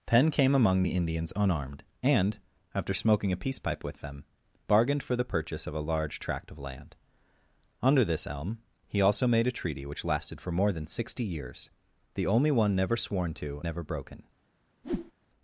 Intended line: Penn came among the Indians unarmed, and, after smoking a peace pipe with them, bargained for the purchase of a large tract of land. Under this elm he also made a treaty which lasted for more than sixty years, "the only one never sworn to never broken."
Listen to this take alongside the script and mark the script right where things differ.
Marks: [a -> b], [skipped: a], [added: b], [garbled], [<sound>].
Penn came among the Indians unarmed, and, after smoking a peace pipe with them, bargained for the purchase of a large tract of land. Under this elm he also made a treaty which lasted for more than sixty years, "the only one never sworn to never broken." [whoosh]